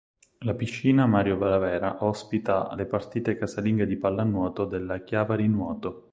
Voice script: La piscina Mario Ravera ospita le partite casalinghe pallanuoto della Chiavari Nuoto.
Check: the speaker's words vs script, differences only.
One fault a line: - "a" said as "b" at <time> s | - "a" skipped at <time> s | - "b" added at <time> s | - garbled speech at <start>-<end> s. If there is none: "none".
- "di" added at 3.8 s